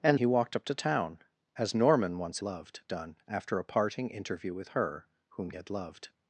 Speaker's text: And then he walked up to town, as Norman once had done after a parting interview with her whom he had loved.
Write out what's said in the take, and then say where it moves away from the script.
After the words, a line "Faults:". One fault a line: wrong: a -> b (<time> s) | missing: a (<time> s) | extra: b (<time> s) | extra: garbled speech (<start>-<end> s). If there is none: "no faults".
And he walked up to town, as Norman once loved done after a parting interview with her whom had loved.
Faults:
missing: then (0.2 s)
wrong: had -> loved (2.4 s)
missing: he (5.5 s)